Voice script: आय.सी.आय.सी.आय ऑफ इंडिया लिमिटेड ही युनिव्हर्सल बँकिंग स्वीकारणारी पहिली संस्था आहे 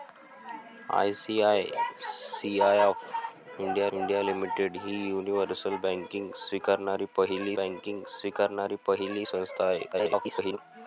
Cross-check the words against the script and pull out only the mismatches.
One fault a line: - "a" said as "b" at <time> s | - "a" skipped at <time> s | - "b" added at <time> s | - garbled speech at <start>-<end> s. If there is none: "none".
- "इंडिया" added at 3.9 s
- "बँकिंग स्वीकारणारी पहिली" added at 7.6 s
- garbled speech at 9.9-10.6 s